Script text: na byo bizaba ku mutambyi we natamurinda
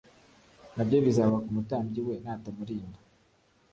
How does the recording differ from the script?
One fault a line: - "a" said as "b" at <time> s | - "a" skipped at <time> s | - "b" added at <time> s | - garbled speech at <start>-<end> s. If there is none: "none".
none